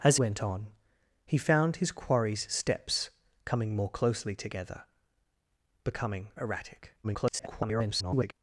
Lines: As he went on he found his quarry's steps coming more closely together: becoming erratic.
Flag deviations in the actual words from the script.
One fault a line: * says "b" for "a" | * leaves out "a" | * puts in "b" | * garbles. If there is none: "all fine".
* leaves out "he"
* garbles